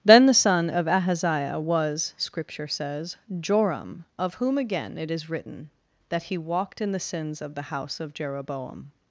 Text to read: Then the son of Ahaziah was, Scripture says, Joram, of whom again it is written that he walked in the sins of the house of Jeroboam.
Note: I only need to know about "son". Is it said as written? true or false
true